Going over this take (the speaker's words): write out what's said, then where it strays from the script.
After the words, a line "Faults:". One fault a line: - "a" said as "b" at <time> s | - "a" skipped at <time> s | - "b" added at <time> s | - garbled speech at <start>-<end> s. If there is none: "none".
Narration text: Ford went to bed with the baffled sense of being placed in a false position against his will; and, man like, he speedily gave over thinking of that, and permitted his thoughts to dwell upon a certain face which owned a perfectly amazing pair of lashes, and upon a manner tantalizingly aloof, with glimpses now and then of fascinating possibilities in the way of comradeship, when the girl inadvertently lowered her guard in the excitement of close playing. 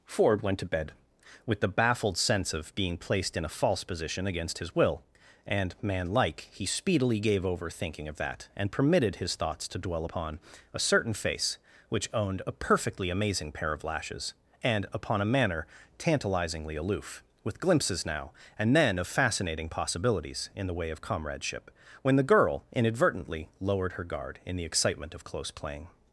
Ford went to bed with the baffled sense of being placed in a false position against his will; and, man like, he speedily gave over thinking of that, and permitted his thoughts to dwell upon a certain face which owned a perfectly amazing pair of lashes, and upon a manner tantalizingly aloof, with glimpses now and then of fascinating possibilities in the way of comradeship, when the girl inadvertently lowered her guard in the excitement of close playing.
Faults:
none